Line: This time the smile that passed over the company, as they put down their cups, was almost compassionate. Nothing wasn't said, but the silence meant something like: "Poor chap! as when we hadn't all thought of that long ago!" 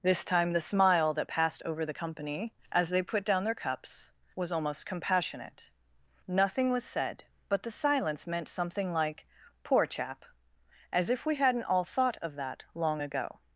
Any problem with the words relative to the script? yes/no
yes